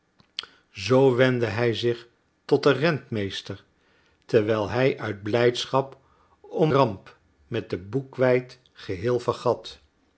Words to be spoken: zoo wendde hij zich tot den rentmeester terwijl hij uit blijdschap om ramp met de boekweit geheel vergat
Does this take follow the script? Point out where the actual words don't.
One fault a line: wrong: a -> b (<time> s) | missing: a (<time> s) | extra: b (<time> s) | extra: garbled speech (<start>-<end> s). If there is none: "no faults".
no faults